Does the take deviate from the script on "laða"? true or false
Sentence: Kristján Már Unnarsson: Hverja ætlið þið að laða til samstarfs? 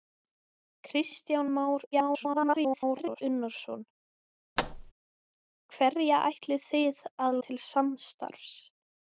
true